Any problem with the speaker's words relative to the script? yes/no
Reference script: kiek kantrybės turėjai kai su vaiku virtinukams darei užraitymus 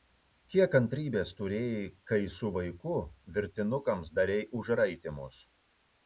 no